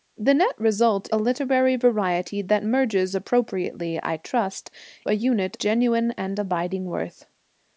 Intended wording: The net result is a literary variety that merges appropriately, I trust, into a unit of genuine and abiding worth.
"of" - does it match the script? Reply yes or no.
no